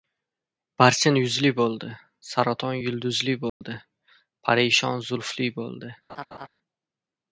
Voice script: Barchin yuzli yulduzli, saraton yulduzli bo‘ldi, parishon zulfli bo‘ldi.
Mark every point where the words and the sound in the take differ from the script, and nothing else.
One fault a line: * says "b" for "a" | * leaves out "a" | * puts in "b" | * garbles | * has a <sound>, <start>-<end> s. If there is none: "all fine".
* says "bo‘ldi" for "yulduzli"
* has a dropout, 3.5-3.6 s
* has a laugh, 6.1-6.5 s